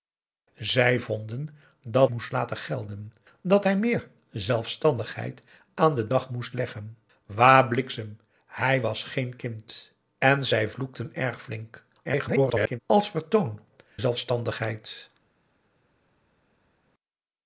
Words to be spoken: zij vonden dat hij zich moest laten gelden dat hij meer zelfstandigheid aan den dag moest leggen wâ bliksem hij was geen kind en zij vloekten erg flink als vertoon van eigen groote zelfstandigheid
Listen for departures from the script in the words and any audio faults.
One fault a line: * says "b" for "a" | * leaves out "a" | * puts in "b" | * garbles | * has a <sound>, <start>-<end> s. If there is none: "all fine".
* leaves out "hij zich"
* garbles
* leaves out "van eigen groote"